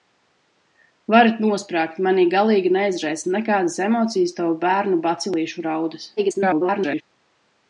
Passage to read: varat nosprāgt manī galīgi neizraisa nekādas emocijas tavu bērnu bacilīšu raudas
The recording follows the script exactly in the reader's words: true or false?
false